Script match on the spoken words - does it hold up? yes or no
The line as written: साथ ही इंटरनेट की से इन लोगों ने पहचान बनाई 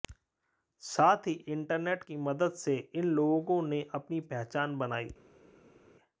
no